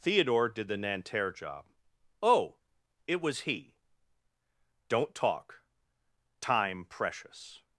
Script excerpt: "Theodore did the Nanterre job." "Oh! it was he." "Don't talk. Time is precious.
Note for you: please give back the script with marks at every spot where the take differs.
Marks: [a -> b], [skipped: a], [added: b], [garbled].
"Theodore did the Nanterre job." "Oh! it was he." "Don't talk. Time [skipped: is] precious.